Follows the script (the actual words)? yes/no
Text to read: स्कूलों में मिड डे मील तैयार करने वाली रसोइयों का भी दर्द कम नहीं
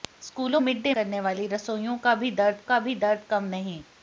no